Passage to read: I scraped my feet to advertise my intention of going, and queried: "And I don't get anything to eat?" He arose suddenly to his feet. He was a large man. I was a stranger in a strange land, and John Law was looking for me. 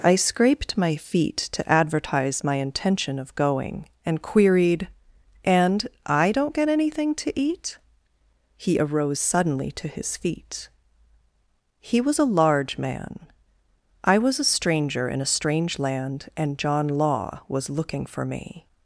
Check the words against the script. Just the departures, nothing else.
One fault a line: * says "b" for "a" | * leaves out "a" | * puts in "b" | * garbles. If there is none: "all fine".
all fine